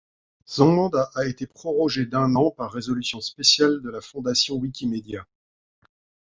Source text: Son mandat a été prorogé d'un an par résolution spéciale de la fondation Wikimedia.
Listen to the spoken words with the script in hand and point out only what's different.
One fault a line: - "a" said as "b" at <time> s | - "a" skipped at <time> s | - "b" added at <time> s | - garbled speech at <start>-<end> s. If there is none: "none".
none